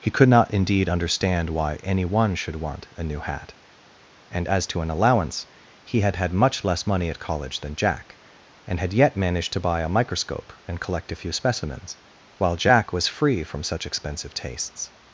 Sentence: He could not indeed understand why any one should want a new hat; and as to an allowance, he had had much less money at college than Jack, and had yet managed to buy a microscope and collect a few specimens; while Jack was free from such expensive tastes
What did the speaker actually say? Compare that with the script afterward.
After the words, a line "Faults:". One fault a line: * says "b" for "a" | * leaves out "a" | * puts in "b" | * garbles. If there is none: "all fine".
He could not indeed understand why any one should want a new hat; and as to an allowance, he had had much less money at college than Jack, and had yet managed to buy a microscope and collect a few specimens; while Jack was free from such expensive tastes
Faults:
all fine